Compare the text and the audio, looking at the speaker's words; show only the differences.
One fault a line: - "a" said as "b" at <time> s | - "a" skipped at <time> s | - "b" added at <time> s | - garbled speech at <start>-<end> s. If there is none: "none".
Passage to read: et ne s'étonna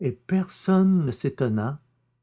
- "personne" added at 0.1 s